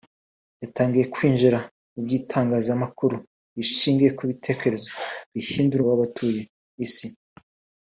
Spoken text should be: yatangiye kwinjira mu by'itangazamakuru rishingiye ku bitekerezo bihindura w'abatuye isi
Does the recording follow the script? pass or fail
pass